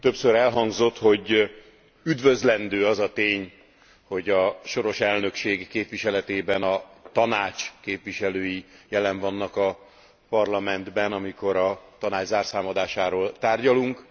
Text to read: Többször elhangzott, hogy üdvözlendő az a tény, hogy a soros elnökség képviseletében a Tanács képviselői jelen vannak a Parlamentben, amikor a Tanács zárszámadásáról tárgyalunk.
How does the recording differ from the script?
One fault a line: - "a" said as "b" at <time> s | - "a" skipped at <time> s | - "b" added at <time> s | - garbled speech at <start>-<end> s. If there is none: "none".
none